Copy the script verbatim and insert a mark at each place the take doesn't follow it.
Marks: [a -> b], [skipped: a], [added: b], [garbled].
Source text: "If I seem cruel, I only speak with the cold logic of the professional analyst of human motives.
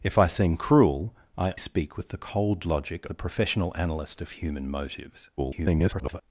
"If I seem cruel, I [skipped: only] speak with the cold logic [skipped: of] the professional analyst of human motives. [garbled]